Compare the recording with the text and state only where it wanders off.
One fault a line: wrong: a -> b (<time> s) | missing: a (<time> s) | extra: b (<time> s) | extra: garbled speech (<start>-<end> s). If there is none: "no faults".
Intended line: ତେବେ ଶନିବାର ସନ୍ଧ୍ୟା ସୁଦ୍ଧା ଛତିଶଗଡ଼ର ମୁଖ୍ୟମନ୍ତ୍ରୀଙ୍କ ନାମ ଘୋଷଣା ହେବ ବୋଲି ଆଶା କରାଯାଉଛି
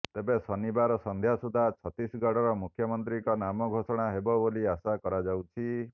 no faults